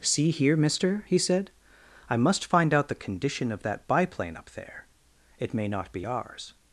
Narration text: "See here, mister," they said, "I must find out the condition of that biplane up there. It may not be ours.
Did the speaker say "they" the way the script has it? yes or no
no